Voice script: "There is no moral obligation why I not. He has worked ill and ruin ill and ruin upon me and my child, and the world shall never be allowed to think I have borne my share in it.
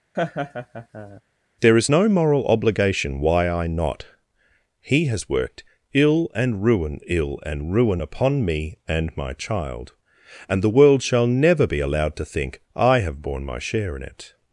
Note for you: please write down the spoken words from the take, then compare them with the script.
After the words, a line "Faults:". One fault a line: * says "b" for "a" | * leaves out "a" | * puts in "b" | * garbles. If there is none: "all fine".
"There is no moral obligation why I not. He has worked ill and ruin ill and ruin upon me and my child, and the world shall never be allowed to think I have borne my share in it.
Faults:
all fine